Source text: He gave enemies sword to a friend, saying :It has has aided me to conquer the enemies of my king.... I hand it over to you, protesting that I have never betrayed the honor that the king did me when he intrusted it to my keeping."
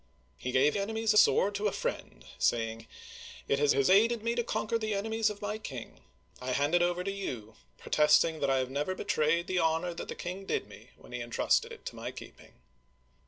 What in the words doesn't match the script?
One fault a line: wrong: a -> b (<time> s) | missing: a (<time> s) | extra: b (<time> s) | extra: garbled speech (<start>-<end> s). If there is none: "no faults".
no faults